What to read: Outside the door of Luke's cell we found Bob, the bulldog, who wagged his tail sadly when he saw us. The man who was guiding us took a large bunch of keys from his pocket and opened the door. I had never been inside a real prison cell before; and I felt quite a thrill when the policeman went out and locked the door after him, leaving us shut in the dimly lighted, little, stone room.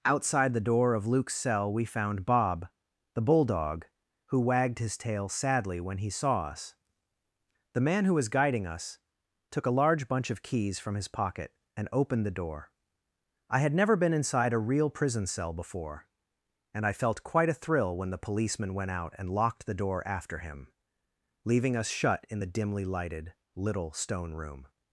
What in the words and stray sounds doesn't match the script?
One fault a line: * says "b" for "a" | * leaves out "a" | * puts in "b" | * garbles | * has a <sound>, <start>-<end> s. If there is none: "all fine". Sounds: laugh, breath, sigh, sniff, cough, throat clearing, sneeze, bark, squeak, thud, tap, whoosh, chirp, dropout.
all fine